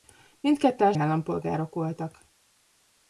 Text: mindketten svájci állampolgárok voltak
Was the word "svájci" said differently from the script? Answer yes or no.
yes